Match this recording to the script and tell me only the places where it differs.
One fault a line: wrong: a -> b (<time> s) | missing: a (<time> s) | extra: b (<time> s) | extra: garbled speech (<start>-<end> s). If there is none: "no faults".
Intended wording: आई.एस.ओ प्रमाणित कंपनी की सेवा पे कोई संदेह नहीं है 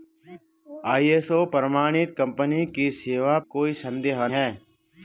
missing: पे (3.4 s)
missing: नहीं (4.3 s)